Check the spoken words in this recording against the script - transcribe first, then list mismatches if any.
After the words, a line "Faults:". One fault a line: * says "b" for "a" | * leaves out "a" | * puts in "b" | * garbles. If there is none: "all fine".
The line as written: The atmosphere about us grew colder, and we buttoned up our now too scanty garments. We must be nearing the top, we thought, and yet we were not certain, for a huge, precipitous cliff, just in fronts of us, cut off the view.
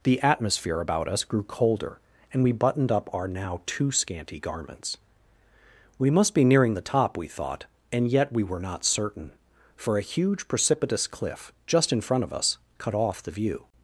The atmosphere about us grew colder, and we buttoned up our now too scanty garments. We must be nearing the top, we thought, and yet we were not certain, for a huge, precipitous cliff, just in front of us, cut off the view.
Faults:
* says "front" for "fronts"